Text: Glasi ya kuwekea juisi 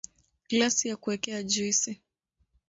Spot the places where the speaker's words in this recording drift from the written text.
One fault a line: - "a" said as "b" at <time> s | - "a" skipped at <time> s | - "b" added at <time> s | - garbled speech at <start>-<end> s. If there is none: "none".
none